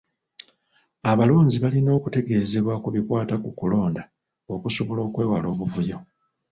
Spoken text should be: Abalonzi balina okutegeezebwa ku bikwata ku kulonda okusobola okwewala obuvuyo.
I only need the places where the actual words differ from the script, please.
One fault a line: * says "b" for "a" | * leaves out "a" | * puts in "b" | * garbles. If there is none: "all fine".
all fine